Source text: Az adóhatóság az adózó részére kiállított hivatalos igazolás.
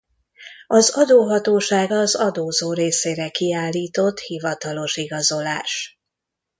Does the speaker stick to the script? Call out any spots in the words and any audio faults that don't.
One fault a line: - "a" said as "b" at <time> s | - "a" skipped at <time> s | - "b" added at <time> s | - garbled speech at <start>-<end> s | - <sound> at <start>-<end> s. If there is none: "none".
none